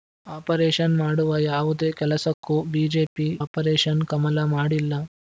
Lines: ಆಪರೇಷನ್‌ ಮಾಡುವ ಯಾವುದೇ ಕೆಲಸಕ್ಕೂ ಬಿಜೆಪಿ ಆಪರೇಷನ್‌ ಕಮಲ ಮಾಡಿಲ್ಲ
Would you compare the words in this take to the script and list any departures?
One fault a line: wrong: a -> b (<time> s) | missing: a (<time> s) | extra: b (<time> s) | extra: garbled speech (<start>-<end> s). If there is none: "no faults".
no faults